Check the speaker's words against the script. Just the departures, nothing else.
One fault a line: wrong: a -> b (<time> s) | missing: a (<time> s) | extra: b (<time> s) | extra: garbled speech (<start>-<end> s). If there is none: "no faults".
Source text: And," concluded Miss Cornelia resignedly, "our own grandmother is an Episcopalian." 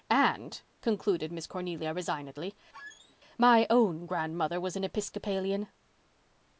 wrong: our -> my (3.4 s)
wrong: is -> was (4.6 s)